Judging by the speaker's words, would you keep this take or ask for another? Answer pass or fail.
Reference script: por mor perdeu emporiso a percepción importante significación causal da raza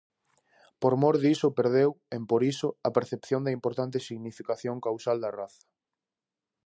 fail